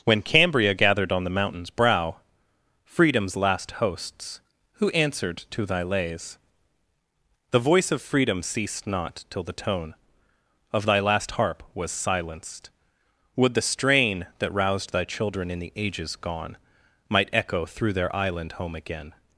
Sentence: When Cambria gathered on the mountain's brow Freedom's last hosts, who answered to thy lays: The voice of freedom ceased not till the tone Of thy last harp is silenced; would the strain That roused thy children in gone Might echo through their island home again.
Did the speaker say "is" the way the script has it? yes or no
no